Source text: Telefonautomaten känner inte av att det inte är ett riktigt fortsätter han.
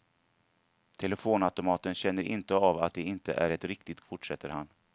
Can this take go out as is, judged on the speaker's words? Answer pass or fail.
pass